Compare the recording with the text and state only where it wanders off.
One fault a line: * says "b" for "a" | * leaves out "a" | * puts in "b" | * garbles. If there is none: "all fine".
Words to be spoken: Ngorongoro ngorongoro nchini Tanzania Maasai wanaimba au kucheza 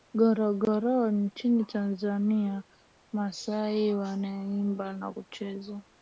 * leaves out "ngorongoro"
* says "na" for "au"